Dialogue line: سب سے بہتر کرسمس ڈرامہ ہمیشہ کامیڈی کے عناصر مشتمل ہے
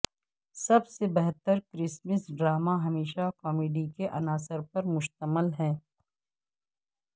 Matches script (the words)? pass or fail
fail